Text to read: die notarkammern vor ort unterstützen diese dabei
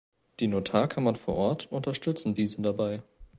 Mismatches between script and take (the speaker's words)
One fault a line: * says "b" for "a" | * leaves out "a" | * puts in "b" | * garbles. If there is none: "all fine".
all fine